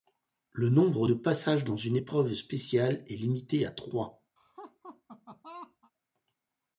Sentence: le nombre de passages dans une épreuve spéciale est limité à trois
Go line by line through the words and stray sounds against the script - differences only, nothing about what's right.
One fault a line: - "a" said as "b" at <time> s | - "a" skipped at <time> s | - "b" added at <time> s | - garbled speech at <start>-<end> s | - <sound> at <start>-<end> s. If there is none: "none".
- laugh at 4.4-5.9 s